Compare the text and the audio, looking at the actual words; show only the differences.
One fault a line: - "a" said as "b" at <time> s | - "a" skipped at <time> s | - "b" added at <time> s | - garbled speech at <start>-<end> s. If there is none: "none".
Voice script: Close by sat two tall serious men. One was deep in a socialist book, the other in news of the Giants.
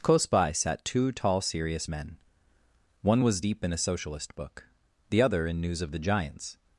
none